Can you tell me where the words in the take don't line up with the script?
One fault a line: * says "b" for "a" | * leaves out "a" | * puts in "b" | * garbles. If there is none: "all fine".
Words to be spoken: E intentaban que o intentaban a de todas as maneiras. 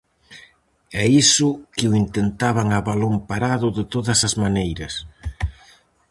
* says "iso" for "intentaban"
* puts in "balón parado"